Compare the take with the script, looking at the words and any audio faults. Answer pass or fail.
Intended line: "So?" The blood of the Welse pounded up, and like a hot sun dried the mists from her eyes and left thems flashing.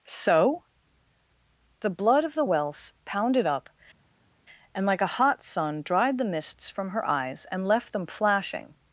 fail